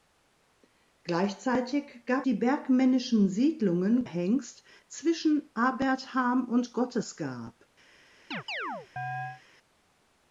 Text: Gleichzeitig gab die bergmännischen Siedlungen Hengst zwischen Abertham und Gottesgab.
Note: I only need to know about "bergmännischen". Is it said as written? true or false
true